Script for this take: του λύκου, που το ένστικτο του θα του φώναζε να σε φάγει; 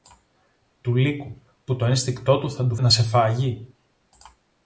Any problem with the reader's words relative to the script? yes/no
yes